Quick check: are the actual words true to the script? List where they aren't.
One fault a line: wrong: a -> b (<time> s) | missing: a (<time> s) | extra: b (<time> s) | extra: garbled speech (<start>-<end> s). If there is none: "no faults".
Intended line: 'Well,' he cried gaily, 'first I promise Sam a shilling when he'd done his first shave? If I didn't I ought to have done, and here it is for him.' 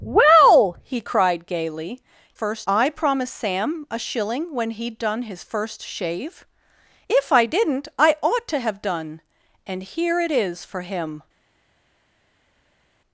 no faults